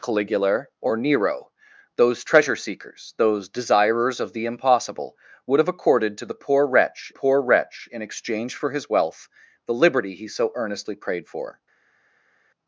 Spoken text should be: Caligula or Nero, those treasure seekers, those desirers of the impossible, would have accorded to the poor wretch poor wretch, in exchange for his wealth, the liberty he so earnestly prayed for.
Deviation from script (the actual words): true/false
false